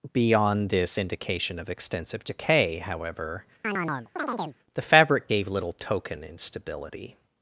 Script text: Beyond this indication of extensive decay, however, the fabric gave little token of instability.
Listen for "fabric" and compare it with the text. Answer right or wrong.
right